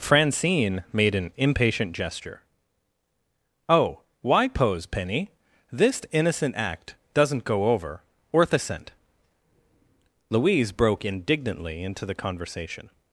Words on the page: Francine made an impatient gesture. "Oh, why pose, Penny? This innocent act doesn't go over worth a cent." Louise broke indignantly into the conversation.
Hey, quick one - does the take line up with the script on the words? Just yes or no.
yes